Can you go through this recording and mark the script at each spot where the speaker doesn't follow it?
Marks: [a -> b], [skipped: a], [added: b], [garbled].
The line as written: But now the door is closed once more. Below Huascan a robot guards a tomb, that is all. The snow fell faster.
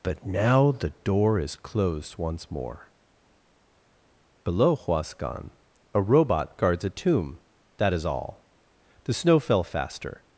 But now the door is closed once more. Below Huascan a robot guards a tomb, that is all. The snow fell faster.